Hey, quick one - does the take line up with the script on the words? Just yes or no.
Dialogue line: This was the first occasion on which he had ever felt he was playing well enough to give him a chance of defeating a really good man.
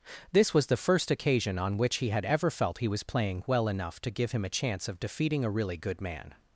yes